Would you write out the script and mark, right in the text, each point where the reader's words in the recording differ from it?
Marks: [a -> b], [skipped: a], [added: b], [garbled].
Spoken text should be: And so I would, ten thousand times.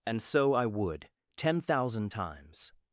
And so I would, ten thousand times.